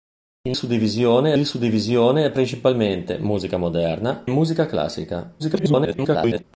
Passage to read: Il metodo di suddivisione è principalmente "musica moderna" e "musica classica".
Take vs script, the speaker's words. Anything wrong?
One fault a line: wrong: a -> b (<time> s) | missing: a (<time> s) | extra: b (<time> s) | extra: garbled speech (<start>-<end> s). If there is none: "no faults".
wrong: metodo -> suddivisione (0.5 s)
missing: e (4.2 s)
extra: garbled speech (5.4-6.4 s)